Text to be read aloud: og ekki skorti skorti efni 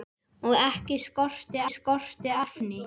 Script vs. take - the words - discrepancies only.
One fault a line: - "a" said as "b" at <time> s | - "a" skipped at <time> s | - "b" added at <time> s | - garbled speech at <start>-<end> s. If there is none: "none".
none